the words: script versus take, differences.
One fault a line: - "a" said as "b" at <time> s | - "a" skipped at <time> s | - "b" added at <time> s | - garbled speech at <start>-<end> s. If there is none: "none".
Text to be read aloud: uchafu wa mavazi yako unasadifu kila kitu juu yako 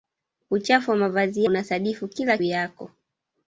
- "yako" skipped at 1.4 s
- "kitu juu" skipped at 2.4 s